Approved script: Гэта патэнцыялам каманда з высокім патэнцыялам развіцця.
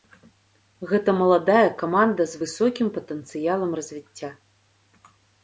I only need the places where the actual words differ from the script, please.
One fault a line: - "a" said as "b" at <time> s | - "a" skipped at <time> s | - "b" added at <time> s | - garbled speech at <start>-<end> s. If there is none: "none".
- "патэнцыялам" said as "маладая" at 1.2 s